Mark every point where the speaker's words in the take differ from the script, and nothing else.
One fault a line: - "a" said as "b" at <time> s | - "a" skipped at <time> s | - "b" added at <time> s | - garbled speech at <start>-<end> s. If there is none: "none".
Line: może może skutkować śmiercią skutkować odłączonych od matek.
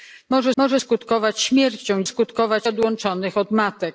none